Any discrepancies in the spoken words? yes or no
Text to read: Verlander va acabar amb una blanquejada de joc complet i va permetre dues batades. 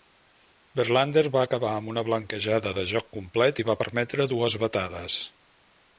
no